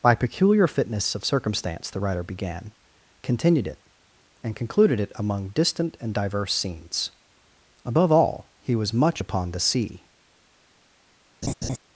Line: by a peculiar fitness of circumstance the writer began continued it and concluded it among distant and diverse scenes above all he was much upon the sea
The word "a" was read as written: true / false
false